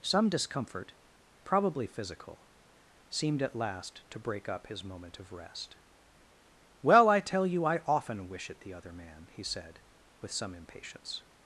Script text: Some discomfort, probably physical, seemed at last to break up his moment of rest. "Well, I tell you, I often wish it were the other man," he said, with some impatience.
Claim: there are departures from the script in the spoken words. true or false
true